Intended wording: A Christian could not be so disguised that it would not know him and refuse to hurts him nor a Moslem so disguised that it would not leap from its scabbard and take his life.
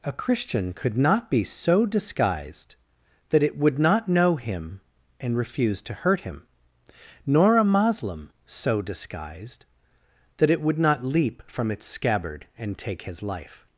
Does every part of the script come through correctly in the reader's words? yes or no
no